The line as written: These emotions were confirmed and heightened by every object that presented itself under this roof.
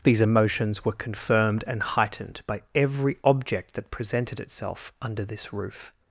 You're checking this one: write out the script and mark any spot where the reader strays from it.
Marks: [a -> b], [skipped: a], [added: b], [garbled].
These emotions were confirmed and heightened by every object that presented itself under this roof.